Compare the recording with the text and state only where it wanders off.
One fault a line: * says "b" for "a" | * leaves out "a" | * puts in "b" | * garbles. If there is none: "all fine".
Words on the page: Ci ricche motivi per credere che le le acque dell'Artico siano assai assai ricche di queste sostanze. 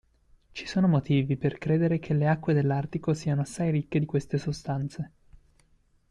* says "sono" for "ricche"
* leaves out "le"
* leaves out "assai"